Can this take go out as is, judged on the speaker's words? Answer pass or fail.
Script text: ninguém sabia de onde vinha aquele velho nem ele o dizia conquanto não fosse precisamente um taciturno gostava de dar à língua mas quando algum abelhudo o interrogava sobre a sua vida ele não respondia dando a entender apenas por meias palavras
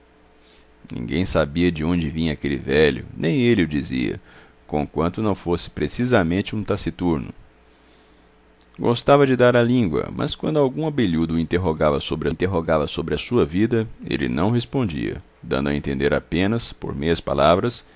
fail